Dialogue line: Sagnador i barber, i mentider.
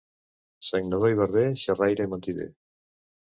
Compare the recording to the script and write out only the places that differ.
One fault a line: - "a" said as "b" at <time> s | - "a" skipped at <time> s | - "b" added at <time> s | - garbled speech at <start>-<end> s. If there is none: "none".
- "xerraire" added at 1.6 s